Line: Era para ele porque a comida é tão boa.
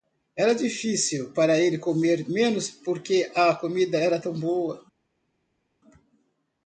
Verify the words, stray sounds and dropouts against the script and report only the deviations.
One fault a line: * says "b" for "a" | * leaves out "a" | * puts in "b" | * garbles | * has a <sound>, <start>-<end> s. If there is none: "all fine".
* puts in "difícil"
* puts in "comer menos"
* says "era" for "é"